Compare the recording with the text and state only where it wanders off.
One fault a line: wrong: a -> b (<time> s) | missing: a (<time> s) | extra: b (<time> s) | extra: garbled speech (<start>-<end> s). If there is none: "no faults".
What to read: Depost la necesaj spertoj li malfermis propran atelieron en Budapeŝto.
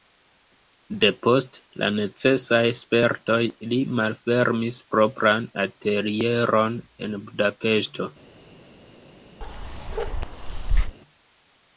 no faults